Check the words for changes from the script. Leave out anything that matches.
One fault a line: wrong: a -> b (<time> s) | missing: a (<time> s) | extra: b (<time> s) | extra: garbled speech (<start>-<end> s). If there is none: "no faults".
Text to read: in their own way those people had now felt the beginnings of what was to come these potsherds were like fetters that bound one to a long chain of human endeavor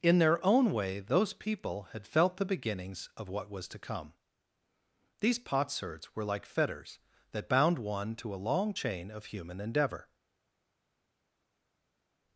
missing: now (2.1 s)